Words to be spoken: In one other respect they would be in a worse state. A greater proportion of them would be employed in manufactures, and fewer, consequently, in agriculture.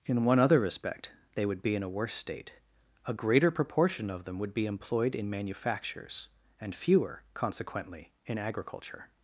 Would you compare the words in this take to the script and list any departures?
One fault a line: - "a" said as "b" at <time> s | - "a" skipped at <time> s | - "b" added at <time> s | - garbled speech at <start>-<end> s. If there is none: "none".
none